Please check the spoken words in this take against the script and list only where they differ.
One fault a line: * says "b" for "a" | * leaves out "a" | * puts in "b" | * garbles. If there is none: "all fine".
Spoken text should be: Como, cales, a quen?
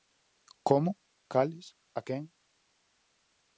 all fine